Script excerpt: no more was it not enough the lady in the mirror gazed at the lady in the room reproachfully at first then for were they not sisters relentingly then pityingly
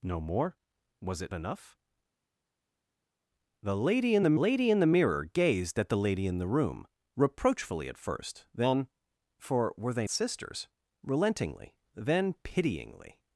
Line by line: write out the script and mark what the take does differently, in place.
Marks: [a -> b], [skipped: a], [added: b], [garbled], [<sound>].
no more was it [skipped: not] enough the lady in the [added: lady in the] mirror gazed at the lady in the room reproachfully at first then for were they [skipped: not] sisters relentingly then pityingly